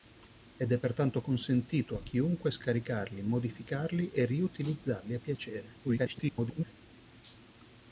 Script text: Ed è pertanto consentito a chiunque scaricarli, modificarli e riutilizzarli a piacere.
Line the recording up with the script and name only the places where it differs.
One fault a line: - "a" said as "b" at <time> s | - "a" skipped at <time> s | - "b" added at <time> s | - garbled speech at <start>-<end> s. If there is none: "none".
- garbled speech at 5.8-6.7 s